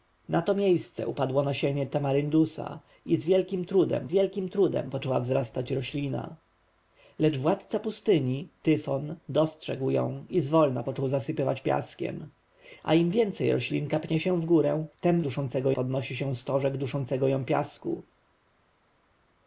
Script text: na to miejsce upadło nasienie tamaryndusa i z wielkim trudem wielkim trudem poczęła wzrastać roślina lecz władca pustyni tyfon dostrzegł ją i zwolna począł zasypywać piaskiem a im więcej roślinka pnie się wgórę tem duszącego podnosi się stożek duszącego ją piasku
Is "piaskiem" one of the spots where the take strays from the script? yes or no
no